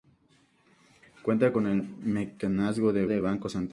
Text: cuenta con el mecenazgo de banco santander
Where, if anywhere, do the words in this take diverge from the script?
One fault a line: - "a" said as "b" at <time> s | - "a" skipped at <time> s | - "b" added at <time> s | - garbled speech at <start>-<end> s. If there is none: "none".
- "de" added at 3.1 s